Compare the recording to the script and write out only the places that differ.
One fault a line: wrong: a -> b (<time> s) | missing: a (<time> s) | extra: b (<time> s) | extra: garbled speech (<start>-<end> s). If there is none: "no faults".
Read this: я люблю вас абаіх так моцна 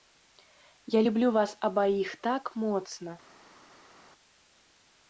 no faults